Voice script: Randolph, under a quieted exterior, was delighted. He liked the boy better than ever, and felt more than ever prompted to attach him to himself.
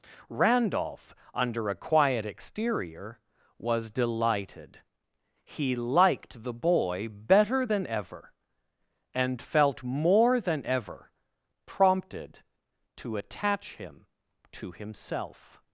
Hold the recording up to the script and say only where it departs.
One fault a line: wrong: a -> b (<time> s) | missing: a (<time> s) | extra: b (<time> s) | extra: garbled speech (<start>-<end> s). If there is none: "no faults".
wrong: quieted -> quiet (1.8 s)